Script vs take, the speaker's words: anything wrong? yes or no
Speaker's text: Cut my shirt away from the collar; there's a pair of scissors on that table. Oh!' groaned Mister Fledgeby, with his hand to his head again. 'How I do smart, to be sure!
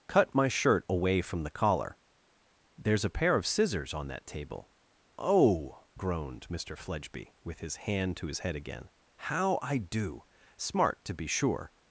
no